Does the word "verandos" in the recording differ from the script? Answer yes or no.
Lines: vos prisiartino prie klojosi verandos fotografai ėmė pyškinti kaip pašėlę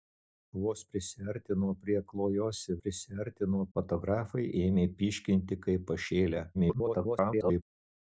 yes